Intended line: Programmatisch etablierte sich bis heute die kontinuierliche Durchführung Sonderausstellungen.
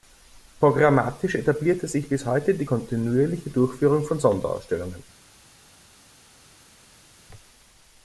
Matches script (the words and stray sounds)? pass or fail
fail